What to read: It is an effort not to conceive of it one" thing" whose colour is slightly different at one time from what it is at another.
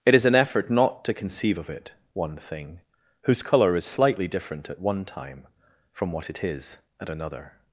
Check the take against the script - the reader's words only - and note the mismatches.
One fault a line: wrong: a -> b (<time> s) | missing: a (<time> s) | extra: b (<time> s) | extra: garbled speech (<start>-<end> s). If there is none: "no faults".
no faults